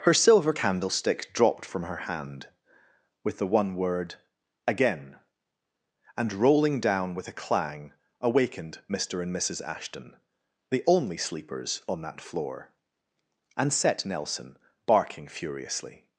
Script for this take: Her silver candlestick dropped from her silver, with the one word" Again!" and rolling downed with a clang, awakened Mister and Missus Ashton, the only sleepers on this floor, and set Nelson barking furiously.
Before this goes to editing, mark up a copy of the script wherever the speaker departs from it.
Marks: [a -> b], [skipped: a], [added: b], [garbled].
Her silver candlestick dropped from her [silver, -> hand] with the one word" Again!" and rolling [downed -> down] with a clang, awakened Mister and Missus Ashton, the only sleepers on [this -> that] floor, and set Nelson barking furiously.